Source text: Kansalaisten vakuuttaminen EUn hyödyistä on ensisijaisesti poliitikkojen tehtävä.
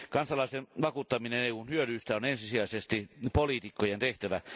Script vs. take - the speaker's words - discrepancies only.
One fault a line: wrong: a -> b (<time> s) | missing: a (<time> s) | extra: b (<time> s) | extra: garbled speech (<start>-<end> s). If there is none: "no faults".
no faults